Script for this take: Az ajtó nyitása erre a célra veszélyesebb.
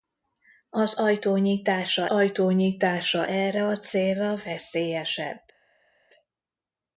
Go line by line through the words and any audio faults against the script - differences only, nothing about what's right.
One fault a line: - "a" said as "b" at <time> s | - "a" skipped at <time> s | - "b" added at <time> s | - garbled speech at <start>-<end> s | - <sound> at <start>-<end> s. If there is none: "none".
- "ajtó nyitása" added at 2.1 s